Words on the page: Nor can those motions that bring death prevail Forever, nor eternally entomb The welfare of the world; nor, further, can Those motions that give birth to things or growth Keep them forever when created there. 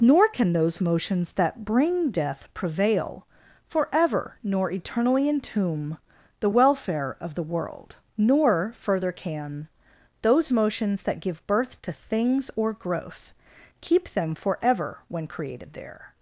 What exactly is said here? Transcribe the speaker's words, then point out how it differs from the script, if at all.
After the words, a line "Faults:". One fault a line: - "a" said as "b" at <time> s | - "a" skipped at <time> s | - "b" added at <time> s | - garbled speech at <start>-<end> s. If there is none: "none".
Nor can those motions that bring death prevail Forever, nor eternally entomb The welfare of the world; nor, further, can Those motions that give birth to things or growth Keep them forever when created there.
Faults:
none